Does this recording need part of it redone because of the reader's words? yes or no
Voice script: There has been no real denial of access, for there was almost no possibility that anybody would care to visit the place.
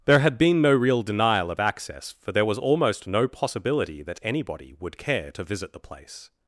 yes